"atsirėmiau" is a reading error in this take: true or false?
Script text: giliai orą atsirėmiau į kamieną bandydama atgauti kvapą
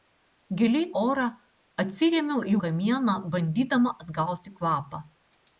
false